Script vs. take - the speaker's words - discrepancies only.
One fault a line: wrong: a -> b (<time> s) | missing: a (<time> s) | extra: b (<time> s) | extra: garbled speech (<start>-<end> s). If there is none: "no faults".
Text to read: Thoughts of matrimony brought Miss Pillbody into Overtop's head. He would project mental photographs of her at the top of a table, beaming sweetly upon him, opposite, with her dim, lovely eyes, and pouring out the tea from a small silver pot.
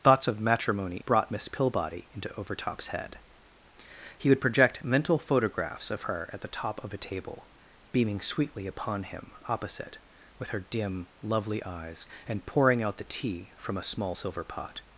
no faults